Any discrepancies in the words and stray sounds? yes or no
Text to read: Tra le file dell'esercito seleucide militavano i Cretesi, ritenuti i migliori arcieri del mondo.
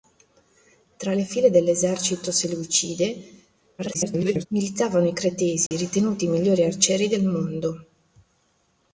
yes